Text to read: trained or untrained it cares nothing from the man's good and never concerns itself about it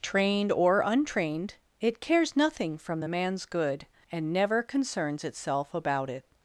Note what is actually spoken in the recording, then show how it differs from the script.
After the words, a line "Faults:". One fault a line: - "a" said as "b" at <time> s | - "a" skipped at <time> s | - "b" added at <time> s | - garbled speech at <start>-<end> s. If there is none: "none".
trained or untrained it cares nothing from the man's good and never concerns itself about it
Faults:
none